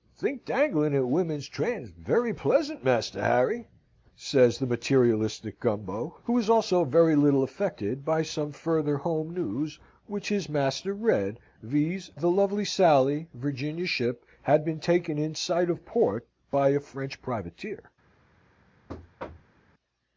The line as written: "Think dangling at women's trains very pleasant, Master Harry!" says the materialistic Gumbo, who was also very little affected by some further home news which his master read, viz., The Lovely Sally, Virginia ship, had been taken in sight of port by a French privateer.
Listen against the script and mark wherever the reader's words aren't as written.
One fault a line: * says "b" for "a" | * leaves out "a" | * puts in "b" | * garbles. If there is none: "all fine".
all fine